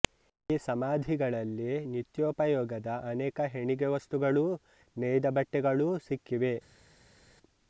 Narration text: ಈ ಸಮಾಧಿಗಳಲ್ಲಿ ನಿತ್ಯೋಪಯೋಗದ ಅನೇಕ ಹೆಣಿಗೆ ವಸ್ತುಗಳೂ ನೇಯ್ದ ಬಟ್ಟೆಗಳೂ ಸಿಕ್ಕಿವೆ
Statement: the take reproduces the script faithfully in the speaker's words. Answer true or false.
true